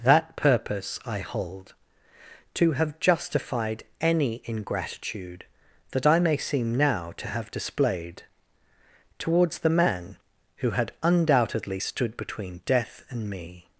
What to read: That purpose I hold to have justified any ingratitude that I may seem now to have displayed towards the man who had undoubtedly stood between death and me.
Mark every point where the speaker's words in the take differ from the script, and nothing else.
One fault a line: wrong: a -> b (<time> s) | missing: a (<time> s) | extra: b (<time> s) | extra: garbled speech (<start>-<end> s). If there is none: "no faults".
no faults